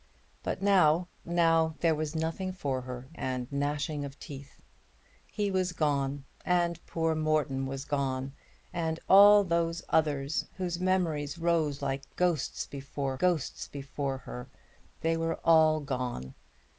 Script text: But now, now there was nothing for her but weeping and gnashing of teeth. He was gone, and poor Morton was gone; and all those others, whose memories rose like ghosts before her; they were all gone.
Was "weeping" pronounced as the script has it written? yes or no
no